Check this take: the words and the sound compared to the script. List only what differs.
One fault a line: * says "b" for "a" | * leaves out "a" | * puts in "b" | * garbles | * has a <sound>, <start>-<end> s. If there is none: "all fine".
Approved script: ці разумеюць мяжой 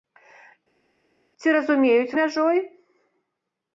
all fine